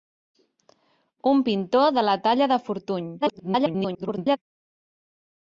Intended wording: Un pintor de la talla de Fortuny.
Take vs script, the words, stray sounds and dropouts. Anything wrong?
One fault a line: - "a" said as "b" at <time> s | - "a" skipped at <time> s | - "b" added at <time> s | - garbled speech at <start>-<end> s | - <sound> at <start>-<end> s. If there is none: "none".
- garbled speech at 3.2-4.4 s